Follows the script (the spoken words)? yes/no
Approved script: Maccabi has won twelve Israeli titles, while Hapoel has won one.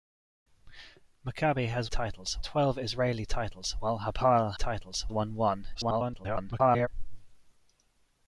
no